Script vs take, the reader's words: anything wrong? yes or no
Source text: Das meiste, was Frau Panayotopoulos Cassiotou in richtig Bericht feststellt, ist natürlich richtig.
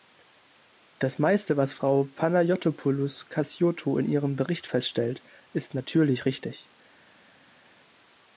yes